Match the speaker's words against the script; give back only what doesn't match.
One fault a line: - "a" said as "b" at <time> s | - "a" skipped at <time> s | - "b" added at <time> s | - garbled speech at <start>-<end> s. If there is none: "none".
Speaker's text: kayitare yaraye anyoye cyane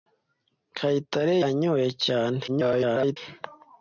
- "yaraye" skipped at 1.4 s
- garbled speech at 2.5-3.2 s